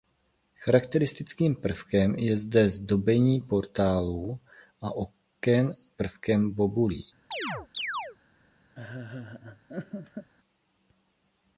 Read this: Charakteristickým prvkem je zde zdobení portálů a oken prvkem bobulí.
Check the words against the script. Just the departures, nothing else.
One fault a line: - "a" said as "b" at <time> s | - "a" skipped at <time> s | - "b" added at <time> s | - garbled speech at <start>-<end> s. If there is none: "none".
none